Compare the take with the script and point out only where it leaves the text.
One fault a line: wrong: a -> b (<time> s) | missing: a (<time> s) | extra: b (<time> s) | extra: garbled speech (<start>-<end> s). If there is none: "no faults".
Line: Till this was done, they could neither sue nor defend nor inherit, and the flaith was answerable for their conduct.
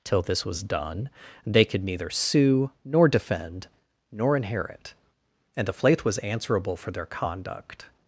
no faults